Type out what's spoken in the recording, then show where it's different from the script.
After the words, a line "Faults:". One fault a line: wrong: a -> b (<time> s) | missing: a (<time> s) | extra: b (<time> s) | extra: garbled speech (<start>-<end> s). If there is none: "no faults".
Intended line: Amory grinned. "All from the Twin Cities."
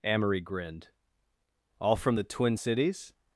Amory grinned. "All from the Twin Cities."
Faults:
no faults